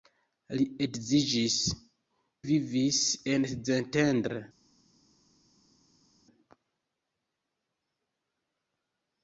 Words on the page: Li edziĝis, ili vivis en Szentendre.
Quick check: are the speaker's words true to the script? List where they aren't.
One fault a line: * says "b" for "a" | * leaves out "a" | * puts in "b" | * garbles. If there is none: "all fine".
* leaves out "ili"